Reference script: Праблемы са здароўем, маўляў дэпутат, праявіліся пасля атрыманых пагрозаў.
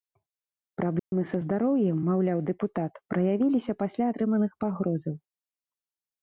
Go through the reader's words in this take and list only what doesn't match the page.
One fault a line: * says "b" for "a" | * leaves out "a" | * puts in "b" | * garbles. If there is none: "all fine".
all fine